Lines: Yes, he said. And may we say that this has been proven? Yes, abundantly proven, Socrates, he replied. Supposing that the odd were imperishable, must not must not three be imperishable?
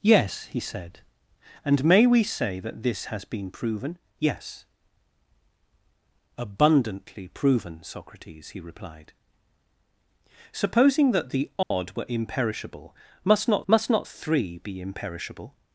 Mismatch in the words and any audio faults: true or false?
true